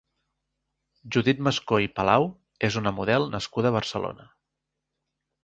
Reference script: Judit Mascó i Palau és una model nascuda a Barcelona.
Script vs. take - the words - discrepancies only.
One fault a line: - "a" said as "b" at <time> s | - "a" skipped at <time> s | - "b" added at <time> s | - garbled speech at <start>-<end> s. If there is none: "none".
none